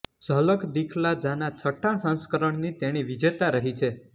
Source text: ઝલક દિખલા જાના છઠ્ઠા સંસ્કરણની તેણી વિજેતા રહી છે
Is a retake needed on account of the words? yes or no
no